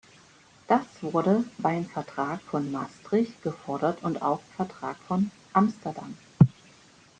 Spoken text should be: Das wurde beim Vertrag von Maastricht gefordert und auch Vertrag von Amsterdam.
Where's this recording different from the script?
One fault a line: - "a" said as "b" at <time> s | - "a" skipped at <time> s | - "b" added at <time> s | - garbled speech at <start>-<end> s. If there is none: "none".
none